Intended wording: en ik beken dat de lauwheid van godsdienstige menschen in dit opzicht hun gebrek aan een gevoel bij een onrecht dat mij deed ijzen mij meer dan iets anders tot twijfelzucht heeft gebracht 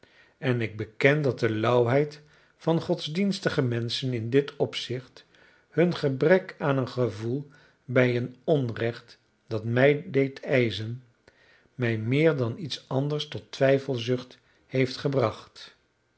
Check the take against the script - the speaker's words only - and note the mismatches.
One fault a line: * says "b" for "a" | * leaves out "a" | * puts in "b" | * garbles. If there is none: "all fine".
all fine